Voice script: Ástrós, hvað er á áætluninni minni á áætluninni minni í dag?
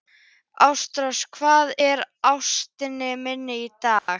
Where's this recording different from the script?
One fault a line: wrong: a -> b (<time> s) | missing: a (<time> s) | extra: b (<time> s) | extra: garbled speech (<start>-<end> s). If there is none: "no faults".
missing: á áætluninni minni (3.6 s)